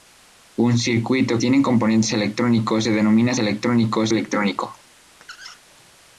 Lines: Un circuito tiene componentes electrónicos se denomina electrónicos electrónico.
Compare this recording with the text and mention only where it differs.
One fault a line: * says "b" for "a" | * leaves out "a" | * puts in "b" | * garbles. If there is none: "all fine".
all fine